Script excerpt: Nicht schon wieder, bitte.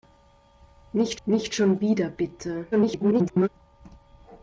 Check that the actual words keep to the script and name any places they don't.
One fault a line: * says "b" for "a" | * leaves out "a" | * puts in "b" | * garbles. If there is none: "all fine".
* puts in "nicht"
* garbles